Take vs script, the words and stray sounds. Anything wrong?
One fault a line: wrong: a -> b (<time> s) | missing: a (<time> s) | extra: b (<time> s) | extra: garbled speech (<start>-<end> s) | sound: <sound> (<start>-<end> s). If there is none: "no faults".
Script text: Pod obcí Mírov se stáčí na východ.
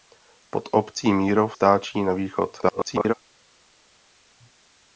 missing: se (1.6 s)
extra: garbled speech (2.6-3.1 s)